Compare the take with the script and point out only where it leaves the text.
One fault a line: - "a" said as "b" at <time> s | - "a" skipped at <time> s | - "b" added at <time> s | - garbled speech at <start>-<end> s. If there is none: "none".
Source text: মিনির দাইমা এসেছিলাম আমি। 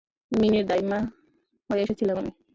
- "হয়ে" added at 1.7 s